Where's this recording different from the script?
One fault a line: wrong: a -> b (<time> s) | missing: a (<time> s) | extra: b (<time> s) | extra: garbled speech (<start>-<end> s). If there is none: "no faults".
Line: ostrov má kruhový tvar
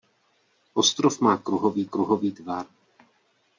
extra: kruhový (1.8 s)